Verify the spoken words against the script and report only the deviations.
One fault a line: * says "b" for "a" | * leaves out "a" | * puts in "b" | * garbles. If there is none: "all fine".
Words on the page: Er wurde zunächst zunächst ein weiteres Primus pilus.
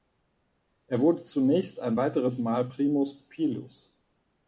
* leaves out "zunächst"
* puts in "Mal"